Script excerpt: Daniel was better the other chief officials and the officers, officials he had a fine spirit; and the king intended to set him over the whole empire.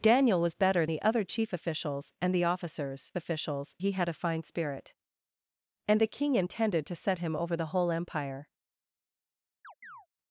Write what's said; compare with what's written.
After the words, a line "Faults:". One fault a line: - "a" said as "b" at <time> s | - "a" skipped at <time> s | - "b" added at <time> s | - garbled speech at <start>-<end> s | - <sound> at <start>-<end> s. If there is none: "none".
Daniel was better the other chief officials and the officers, officials he had a fine spirit; and the king intended to set him over the whole empire.
Faults:
- chirp at 9.6-10.1 s